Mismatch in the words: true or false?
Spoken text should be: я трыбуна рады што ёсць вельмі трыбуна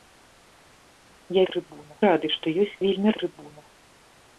false